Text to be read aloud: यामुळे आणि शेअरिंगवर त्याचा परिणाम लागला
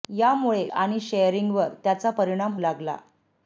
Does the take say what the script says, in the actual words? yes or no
yes